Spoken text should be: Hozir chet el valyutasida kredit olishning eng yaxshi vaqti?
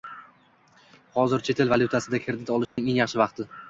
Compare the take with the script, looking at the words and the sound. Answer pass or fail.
fail